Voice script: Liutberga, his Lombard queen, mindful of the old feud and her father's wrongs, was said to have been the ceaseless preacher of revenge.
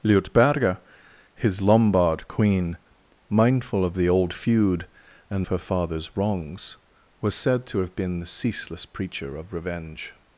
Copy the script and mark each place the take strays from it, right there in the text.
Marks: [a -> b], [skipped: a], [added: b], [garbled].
Liutberga, his Lombard queen, mindful of the old feud and her father's wrongs, was said to have been the ceaseless preacher of revenge.